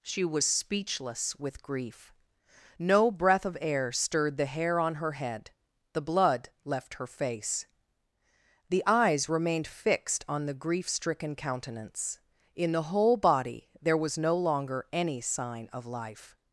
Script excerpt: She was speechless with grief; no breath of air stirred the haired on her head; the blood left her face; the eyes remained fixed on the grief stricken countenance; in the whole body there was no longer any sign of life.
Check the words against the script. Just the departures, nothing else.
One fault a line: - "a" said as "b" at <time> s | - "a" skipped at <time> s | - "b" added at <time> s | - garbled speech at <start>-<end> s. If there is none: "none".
- "haired" said as "hair" at 4.4 s